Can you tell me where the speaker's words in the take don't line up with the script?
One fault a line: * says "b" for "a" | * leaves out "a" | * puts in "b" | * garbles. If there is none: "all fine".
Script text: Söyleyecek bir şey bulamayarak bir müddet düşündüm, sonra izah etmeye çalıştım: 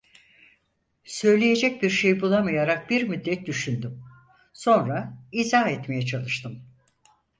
all fine